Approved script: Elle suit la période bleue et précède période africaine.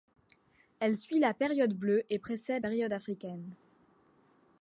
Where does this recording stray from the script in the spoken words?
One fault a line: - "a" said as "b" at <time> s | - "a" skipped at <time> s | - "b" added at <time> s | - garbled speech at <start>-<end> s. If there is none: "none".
none